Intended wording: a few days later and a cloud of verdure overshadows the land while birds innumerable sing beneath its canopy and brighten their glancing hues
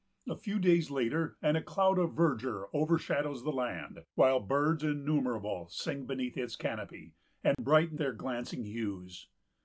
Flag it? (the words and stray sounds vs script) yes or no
yes